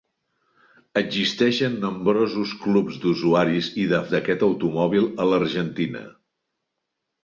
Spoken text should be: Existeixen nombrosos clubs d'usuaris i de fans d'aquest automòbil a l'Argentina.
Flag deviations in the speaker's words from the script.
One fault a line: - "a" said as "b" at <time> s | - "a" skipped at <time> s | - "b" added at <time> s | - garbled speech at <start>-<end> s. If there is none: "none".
- "fans" skipped at 4.0 s